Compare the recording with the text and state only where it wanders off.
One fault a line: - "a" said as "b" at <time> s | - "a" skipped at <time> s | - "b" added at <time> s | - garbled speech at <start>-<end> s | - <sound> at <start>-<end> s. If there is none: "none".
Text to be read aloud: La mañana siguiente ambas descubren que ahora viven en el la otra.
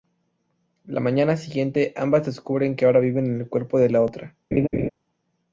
- "cuerpo de" added at 3.5 s
- laugh at 4.5-4.9 s